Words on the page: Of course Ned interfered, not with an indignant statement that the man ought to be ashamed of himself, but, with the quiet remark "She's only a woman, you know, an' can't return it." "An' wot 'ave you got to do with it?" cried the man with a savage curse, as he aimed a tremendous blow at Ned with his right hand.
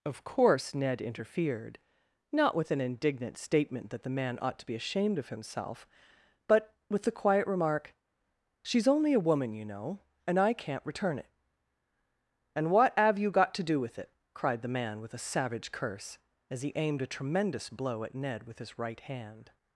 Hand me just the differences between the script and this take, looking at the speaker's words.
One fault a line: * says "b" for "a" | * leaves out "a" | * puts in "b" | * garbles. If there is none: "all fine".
* says "and I" for "an"
* says "And what have" for "An wot ave"